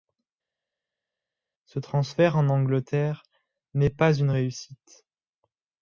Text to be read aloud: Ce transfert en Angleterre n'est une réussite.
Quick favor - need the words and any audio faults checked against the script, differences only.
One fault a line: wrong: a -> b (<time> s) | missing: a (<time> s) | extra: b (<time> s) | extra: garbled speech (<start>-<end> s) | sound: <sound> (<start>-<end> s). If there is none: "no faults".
extra: pas (3.9 s)